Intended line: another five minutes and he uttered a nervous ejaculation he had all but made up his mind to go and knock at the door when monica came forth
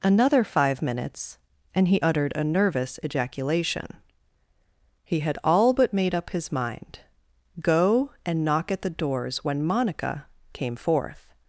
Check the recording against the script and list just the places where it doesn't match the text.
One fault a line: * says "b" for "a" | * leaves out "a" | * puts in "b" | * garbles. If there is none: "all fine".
* leaves out "to"
* says "doors" for "door"